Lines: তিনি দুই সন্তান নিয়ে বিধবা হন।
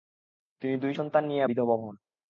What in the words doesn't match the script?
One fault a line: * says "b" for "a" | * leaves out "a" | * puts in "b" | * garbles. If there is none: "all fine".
all fine